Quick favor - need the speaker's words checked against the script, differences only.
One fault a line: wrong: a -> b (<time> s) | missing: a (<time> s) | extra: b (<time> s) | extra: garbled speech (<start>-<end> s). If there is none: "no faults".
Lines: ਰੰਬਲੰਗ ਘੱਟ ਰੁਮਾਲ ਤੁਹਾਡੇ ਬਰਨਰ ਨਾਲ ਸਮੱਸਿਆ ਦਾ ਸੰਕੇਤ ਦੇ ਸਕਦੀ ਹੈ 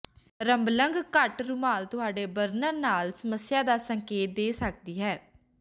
no faults